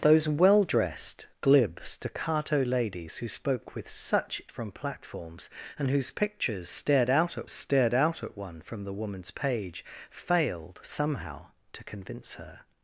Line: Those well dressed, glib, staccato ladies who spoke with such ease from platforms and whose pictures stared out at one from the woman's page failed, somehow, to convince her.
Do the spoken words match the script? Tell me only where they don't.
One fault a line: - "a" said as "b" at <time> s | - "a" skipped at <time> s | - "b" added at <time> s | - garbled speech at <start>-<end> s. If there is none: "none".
- "ease" skipped at 4.4 s
- "stared out at" added at 7.5 s